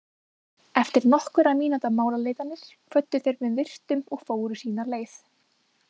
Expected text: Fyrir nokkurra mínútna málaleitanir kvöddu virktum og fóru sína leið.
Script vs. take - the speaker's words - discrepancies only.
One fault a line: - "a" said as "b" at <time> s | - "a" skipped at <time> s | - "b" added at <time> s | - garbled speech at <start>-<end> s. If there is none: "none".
- "Fyrir" said as "Eftir" at 0.8 s
- "þeir með" added at 3.3 s